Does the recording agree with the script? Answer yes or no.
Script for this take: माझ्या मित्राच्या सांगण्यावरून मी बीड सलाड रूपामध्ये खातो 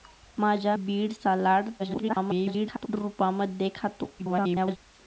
no